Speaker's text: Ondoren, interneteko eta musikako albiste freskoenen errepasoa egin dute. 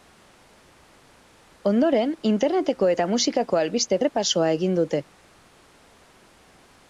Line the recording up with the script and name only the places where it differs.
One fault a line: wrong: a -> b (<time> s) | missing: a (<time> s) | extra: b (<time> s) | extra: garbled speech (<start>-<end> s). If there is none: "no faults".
missing: freskoenen (4.0 s)